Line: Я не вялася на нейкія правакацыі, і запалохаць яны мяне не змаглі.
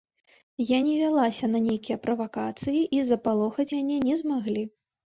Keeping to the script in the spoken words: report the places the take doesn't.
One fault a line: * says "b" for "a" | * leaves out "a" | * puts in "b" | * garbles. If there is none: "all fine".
* leaves out "яны"